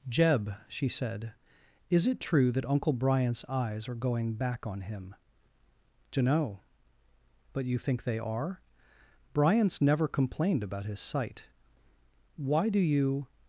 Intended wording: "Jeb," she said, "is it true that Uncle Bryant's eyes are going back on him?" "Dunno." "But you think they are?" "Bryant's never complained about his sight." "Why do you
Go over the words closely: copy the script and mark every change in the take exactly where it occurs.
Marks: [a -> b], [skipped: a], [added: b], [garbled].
"Jeb," she said, "is it true that Uncle Bryant's eyes are going back on him?" "Dunno." "But you think they are?" "Bryant's never complained about his sight." "Why do you